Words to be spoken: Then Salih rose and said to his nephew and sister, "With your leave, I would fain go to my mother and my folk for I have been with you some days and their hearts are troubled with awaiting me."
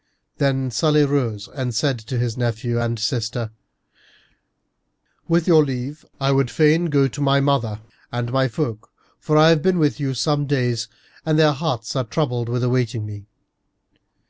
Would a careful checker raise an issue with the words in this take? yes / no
no